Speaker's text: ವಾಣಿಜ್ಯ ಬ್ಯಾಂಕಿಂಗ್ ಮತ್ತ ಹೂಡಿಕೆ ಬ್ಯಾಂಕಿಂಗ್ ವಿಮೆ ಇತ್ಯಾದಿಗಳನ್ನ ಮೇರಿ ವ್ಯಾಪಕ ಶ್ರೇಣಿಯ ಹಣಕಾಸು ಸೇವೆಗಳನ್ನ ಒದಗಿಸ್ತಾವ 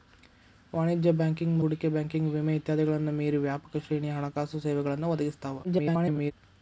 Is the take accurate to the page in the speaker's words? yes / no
no